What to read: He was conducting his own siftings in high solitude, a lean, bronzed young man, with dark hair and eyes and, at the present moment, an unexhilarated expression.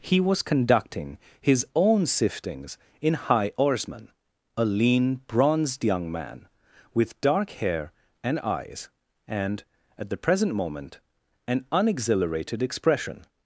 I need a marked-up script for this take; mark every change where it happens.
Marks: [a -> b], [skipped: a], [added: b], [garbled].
He was conducting his own siftings in high [solitude, -> oarsman] a lean, bronzed young man, with dark hair and eyes and, at the present moment, an unexhilarated expression.